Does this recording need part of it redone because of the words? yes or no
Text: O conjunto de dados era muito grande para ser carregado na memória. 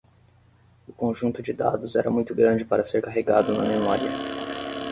no